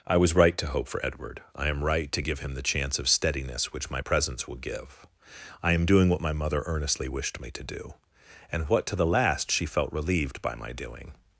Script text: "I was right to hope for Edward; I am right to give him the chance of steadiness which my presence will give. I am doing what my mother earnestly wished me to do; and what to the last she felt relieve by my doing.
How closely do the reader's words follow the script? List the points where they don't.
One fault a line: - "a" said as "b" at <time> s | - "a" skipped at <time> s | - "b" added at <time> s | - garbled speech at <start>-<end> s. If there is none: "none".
- "relieve" said as "relieved" at 9.9 s